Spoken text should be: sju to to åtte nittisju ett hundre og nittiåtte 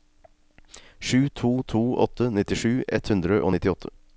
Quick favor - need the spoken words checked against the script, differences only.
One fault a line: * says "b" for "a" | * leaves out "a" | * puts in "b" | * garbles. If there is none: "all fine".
all fine